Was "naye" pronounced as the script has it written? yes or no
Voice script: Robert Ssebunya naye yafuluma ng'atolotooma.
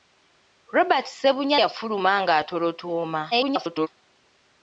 no